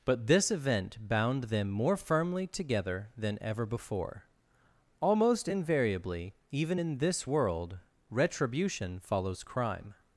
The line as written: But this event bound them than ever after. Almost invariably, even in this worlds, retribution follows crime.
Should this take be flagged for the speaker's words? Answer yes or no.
yes